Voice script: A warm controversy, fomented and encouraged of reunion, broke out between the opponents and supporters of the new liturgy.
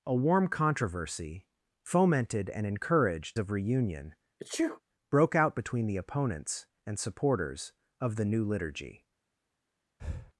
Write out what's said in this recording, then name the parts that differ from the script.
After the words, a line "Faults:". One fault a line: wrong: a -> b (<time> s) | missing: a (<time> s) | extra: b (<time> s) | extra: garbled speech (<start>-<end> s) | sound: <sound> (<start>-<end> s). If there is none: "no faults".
A warm controversy, fomented and encouraged of reunion, broke out between the opponents and supporters of the new liturgy.
Faults:
sound: sneeze (4.4-4.8 s)
sound: breath (10.0-10.3 s)